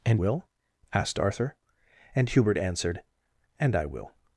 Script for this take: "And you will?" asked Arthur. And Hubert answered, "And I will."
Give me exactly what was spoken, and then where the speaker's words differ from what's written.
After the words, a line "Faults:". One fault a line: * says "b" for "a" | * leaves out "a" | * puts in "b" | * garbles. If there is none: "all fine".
"And will?" asked Arthur. And Hubert answered, "And I will."
Faults:
* leaves out "you"